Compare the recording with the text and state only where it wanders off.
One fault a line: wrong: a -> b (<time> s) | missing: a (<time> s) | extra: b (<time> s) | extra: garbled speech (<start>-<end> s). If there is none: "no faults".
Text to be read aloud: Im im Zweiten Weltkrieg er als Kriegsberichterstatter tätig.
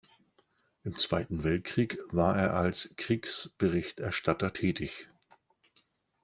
missing: im (1.0 s)
extra: war (2.1 s)